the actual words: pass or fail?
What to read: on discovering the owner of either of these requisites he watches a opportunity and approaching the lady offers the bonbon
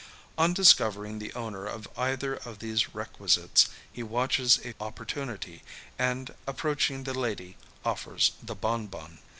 pass